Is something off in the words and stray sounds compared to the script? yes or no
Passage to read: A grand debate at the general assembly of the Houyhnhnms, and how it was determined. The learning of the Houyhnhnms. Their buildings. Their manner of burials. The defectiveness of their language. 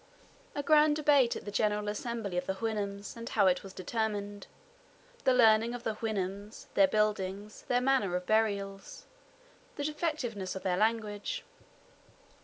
no